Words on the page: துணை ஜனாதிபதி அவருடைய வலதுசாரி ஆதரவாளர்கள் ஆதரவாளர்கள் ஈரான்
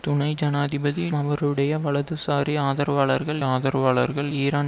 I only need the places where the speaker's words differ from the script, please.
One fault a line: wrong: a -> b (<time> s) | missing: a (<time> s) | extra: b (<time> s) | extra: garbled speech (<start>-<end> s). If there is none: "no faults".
no faults